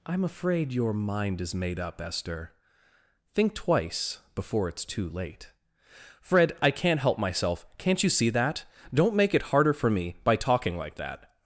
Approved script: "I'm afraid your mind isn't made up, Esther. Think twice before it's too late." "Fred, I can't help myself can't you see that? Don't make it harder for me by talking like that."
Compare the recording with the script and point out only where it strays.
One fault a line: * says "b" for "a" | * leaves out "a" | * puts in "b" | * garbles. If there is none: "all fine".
* says "is" for "isn't"